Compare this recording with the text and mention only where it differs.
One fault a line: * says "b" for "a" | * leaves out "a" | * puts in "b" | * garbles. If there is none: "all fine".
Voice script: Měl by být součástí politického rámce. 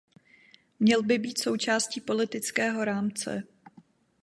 all fine